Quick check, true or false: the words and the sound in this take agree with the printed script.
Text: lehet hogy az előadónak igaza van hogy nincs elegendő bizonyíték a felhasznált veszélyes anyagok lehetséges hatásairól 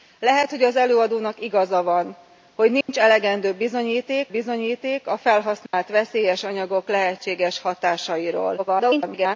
false